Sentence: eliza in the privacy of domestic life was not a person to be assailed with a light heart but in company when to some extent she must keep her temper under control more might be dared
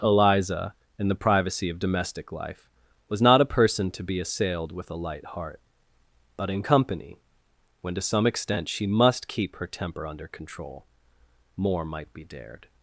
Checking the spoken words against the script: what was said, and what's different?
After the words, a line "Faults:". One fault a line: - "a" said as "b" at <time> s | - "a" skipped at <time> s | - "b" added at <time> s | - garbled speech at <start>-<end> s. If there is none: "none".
eliza in the privacy of domestic life was not a person to be assailed with a light heart but in company when to some extent she must keep her temper under control more might be dared
Faults:
none